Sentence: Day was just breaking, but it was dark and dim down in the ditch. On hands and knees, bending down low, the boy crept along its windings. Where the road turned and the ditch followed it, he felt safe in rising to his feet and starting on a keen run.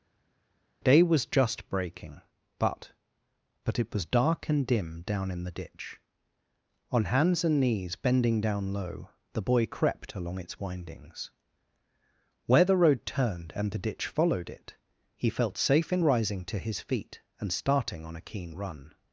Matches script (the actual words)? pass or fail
fail